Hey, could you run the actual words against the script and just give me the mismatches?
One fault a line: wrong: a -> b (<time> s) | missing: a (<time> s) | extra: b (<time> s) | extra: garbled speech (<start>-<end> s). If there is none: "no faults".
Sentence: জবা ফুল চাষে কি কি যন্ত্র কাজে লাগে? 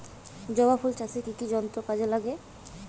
no faults